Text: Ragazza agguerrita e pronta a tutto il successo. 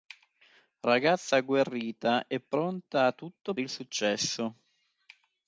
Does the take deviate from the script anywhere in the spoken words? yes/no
no